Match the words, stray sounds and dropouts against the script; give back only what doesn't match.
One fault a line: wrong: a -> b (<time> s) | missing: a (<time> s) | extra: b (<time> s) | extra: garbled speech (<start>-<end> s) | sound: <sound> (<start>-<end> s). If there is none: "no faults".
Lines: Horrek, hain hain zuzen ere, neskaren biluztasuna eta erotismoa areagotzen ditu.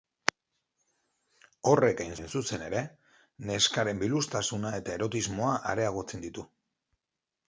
no faults